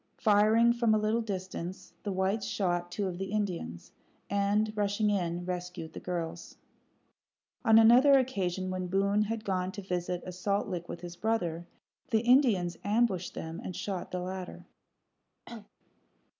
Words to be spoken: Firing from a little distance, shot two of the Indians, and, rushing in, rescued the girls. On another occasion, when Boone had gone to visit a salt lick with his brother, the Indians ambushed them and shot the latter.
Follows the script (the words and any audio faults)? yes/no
no